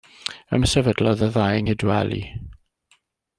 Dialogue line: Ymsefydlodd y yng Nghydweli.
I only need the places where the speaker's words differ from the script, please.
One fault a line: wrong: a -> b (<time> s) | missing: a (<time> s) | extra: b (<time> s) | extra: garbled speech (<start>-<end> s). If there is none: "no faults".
extra: ddau (1.3 s)